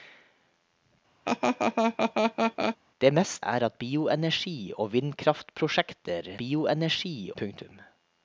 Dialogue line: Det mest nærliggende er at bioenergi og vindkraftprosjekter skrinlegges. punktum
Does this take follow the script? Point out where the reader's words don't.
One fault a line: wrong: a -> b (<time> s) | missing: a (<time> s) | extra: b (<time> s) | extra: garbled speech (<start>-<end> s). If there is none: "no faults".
missing: nærliggende (3.4 s)
wrong: skrinlegges -> bioenergi (6.4 s)